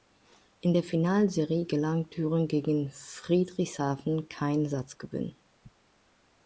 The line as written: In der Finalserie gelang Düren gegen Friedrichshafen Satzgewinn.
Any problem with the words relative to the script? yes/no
yes